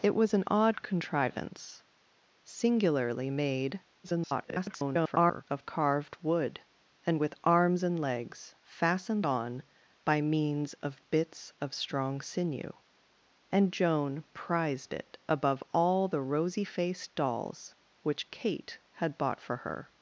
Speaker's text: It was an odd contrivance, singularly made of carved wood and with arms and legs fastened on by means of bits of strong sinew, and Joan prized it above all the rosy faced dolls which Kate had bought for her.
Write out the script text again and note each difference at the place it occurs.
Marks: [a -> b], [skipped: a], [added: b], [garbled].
It was an odd contrivance, singularly made [garbled] of carved wood and with arms and legs fastened on by means of bits of strong sinew, and Joan prized it above all the rosy faced dolls which Kate had bought for her.